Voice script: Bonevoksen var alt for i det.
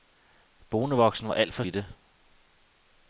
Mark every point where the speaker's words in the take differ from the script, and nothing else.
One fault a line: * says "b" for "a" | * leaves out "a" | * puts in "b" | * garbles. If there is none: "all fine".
all fine